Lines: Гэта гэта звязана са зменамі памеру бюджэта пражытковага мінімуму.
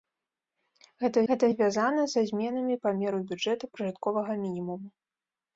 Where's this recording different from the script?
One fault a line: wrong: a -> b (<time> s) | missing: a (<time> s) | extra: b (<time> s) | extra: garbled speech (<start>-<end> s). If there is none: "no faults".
no faults